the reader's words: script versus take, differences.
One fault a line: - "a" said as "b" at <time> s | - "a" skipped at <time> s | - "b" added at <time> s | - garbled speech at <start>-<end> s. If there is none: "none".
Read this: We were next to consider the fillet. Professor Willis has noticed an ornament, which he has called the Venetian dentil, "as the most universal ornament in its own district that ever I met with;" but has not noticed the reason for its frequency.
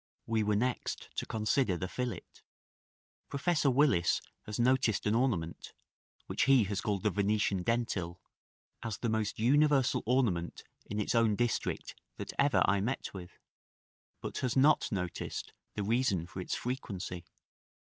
none